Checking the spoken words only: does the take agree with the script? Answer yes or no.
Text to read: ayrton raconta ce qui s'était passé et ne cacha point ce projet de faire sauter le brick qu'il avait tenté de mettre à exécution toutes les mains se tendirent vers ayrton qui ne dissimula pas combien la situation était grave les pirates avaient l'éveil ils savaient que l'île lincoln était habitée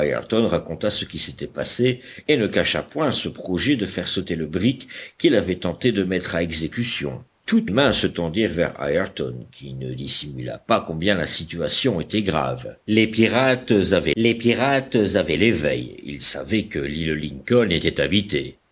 no